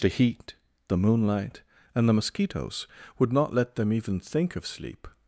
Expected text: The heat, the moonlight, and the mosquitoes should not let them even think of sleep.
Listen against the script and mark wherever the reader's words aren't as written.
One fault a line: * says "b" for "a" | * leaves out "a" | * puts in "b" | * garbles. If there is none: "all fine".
* says "would" for "should"